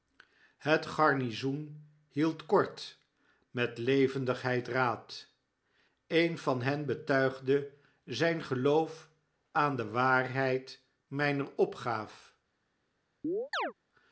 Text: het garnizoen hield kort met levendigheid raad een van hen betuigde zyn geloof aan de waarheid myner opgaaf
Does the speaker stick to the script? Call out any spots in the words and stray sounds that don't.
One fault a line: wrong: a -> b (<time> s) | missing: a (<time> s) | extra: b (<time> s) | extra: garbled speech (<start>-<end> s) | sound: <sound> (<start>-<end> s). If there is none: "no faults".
sound: chirp (13.2-13.7 s)